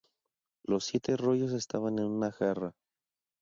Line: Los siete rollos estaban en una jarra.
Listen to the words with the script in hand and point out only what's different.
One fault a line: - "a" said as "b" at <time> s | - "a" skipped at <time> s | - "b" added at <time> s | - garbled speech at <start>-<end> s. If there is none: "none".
none